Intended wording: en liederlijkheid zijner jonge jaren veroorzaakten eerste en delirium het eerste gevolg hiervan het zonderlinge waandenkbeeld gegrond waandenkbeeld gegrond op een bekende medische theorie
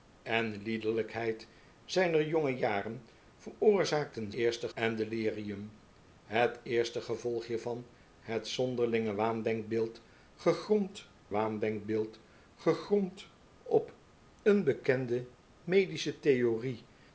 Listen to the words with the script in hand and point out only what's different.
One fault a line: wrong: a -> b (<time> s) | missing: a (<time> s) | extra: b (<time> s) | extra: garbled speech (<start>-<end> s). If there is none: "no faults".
no faults